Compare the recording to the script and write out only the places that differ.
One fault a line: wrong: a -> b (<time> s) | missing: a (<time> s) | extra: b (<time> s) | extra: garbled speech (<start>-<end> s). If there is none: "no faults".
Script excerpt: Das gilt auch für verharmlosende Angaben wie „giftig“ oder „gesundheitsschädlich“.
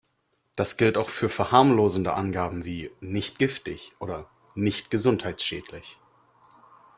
extra: nicht (3.0 s)
extra: nicht (4.5 s)